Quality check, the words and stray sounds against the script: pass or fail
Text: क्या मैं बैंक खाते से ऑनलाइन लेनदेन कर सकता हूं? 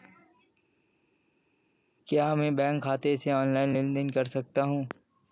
pass